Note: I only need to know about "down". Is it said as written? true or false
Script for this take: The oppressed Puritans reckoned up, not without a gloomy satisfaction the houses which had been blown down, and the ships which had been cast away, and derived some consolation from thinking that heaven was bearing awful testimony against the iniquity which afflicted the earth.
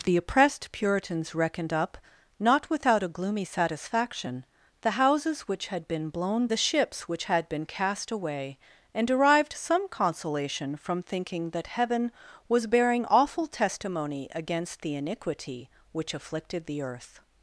false